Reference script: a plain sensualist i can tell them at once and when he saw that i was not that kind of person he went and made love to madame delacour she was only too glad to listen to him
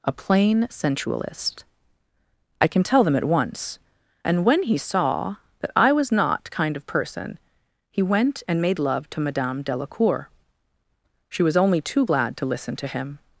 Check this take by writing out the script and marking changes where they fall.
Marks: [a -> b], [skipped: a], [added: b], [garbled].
a plain sensualist i can tell them at once and when he saw that i was not [skipped: that] kind of person he went and made love to madame delacour she was only too glad to listen to him